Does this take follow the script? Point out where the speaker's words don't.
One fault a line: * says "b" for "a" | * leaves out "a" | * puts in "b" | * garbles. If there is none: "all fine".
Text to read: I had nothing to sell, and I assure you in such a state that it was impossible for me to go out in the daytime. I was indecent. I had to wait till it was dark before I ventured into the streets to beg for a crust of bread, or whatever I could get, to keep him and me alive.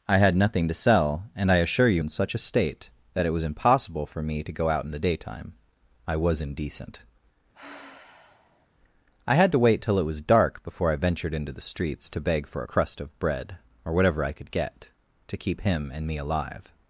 all fine